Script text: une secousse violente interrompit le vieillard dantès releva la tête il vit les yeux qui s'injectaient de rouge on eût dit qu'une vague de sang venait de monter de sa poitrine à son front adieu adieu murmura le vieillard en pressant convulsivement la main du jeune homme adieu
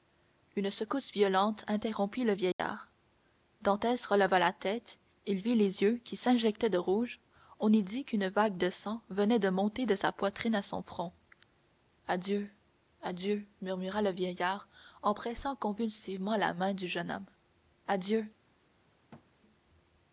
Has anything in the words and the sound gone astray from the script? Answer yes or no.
yes